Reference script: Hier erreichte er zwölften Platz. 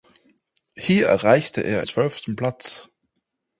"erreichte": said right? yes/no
yes